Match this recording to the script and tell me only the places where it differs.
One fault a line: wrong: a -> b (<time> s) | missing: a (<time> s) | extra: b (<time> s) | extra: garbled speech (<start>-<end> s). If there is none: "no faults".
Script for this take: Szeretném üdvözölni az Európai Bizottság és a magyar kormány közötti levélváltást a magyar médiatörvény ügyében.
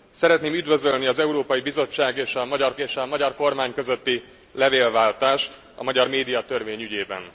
extra: és a magyar (2.8 s)